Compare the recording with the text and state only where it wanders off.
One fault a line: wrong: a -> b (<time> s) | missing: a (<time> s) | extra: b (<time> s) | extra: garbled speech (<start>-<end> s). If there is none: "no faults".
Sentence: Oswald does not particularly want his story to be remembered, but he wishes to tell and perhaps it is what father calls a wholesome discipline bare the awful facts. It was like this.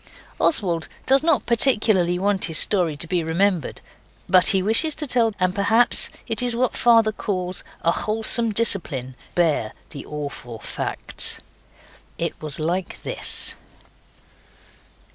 no faults